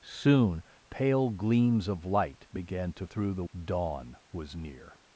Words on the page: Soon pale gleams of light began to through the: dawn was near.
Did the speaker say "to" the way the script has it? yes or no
yes